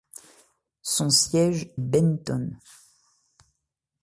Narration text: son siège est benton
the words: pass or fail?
fail